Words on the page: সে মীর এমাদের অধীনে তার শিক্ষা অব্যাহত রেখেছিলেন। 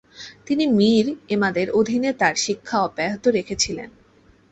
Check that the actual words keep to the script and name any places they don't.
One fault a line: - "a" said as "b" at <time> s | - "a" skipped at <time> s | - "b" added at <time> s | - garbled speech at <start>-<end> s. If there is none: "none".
- "সে" said as "তিনি" at 0.5 s